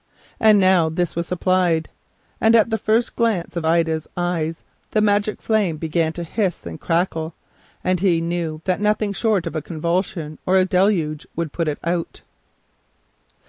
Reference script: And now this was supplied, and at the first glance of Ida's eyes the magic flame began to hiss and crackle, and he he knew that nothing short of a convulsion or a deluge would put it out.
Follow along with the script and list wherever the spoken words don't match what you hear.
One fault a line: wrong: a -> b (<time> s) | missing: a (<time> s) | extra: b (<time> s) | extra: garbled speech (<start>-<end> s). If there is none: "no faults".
missing: he (8.2 s)